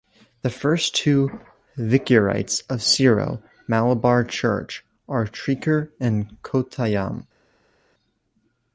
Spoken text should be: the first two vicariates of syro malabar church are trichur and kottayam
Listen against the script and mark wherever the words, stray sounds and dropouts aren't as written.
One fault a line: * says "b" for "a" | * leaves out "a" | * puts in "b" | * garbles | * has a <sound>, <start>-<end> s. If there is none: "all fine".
all fine